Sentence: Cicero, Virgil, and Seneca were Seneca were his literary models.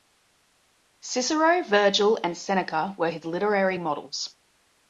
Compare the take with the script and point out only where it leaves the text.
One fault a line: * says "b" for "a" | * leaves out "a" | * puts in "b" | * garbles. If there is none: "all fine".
* leaves out "Seneca were"